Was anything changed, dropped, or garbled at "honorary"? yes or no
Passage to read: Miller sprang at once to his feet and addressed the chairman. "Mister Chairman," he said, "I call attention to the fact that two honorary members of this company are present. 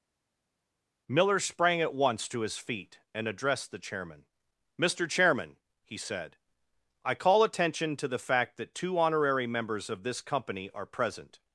no